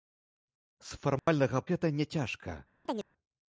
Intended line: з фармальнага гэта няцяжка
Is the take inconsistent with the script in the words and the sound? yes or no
yes